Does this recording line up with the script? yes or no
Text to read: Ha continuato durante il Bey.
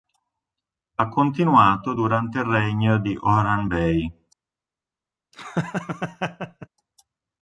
no